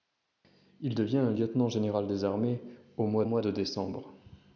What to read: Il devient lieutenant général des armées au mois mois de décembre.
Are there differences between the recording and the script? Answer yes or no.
no